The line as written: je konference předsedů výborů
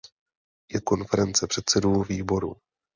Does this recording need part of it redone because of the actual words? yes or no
no